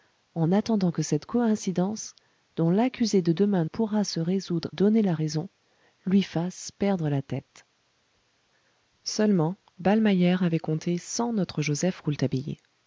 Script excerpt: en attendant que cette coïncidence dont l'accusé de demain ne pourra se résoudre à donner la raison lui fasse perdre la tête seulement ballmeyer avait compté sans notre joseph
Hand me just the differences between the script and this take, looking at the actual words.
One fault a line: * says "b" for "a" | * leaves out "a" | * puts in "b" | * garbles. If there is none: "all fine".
* leaves out "ne"
* leaves out "à"